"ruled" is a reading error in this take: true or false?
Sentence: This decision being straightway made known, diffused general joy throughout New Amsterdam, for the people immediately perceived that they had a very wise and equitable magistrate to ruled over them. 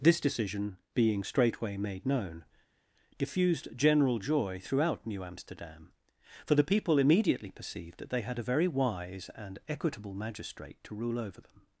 true